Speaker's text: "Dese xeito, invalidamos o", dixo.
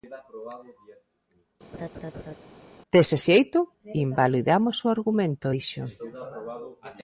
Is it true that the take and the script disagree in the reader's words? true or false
true